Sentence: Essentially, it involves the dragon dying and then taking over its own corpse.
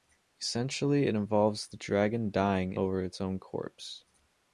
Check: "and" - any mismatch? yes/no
yes